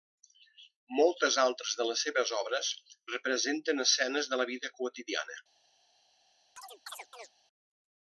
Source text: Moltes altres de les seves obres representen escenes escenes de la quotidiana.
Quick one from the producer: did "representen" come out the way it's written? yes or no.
yes